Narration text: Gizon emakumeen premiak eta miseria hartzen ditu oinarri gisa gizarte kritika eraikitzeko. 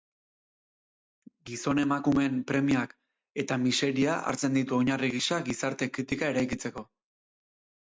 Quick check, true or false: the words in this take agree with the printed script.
true